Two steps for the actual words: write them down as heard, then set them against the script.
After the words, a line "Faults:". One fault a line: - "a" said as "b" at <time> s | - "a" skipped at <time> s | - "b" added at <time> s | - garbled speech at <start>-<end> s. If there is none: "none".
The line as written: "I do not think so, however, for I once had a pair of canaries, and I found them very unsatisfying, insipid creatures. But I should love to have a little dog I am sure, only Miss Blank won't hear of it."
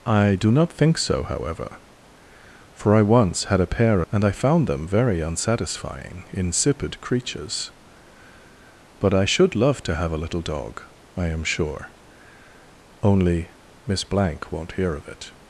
"I do not think so, however, for I once had a pair and I found them very unsatisfying, insipid creatures. But I should love to have a little dog I am sure, only Miss Blank won't hear of it."
Faults:
- "of canaries" skipped at 4.0 s